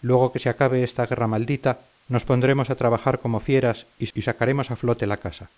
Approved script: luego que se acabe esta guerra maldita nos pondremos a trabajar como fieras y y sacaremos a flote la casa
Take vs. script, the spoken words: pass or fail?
pass